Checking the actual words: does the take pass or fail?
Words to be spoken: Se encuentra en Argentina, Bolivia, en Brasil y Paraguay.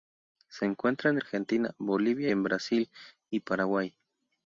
pass